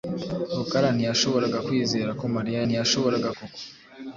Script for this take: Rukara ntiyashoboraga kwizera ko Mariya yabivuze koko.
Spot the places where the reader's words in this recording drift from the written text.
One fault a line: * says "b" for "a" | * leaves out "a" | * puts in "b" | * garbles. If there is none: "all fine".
* says "ntiyashoboraga" for "yabivuze"